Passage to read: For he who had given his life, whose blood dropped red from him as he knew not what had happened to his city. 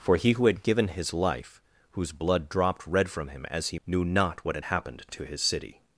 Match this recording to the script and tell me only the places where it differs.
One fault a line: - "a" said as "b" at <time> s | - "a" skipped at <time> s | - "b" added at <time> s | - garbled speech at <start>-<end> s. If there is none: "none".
none